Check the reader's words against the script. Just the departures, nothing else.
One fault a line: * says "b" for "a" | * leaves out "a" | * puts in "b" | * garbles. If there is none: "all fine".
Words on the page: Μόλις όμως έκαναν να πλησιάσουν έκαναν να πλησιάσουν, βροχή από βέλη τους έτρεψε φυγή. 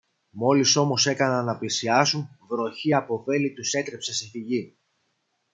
* leaves out "έκαναν να πλησιάσουν"
* puts in "σε"